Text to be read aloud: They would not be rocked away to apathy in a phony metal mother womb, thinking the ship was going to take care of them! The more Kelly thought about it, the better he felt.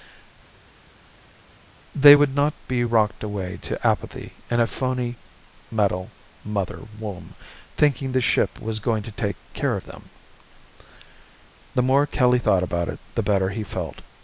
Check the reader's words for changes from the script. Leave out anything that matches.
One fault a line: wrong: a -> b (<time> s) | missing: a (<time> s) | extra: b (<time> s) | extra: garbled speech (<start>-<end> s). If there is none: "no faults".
no faults